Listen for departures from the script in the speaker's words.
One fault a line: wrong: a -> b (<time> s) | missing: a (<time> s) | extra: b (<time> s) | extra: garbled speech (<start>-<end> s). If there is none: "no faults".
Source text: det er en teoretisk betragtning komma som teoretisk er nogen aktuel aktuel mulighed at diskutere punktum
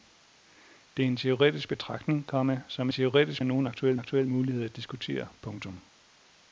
no faults